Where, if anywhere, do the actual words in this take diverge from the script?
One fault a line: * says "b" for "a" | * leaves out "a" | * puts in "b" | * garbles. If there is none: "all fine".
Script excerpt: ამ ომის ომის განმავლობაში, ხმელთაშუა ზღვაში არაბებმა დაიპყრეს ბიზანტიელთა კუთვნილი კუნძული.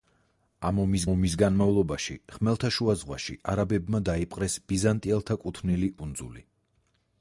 all fine